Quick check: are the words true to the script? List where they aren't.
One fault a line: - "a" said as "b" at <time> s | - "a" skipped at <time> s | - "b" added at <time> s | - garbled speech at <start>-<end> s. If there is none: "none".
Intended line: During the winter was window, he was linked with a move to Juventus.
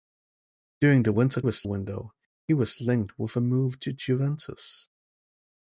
none